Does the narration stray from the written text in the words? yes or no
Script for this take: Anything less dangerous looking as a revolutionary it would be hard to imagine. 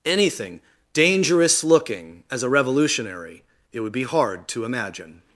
yes